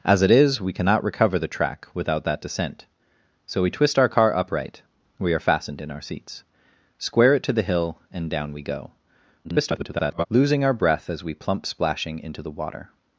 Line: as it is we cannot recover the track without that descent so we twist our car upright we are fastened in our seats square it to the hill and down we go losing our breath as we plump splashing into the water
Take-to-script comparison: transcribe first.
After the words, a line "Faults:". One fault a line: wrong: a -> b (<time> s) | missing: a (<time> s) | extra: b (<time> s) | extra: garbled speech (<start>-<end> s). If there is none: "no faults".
as it is we cannot recover the track without that descent so we twist our car upright we are fastened in our seats square it to the hill and down we go [garbled] losing our breath as we plump splashing into the water
Faults:
extra: garbled speech (9.4-10.3 s)